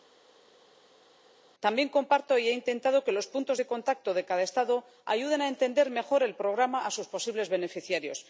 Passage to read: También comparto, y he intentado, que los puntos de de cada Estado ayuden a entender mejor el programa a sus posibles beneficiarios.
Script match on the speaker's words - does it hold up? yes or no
no